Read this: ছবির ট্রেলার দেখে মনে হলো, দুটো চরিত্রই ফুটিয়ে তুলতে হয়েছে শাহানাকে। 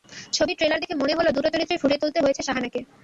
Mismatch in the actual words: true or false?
false